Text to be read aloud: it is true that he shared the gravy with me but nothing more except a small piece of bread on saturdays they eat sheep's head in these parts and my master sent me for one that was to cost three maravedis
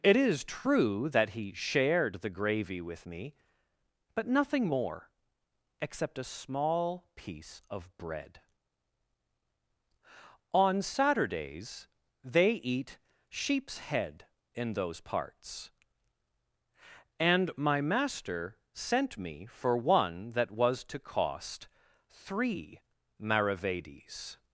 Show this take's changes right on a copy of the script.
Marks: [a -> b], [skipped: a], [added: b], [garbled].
it is true that he shared the gravy with me but nothing more except a small piece of bread on saturdays they eat sheep's head in [these -> those] parts and my master sent me for one that was to cost three maravedis